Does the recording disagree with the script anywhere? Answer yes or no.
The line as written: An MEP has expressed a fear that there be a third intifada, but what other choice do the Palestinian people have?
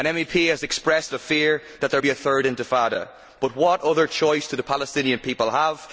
no